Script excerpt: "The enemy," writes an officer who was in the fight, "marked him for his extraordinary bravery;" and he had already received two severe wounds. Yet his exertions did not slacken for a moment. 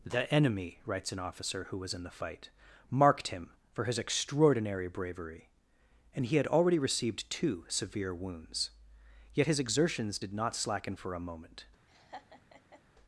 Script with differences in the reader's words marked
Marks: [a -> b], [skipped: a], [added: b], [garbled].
"The enemy," writes an officer who was in the fight, "marked him for his extraordinary bravery;" and he had already received two severe wounds. Yet his exertions did not slacken for a moment.